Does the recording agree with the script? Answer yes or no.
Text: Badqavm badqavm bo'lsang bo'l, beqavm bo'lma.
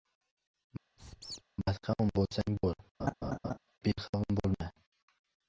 no